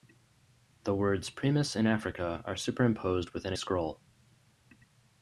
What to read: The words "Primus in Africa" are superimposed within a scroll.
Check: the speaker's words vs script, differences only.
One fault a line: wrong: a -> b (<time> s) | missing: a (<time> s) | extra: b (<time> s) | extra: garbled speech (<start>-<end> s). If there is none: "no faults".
missing: a (3.5 s)